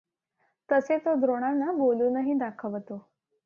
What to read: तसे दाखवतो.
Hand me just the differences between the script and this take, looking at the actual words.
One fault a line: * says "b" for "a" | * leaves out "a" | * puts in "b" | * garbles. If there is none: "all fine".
* puts in "तो द्रोणांना बोलूनही"